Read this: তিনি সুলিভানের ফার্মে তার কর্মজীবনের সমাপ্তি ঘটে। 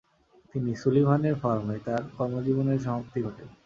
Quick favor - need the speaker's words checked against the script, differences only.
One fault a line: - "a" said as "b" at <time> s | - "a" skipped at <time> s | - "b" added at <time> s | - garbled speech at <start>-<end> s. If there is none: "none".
none